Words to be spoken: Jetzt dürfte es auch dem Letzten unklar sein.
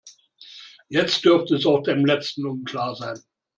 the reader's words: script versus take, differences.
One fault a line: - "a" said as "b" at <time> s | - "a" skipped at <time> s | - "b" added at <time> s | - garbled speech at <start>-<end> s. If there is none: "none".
none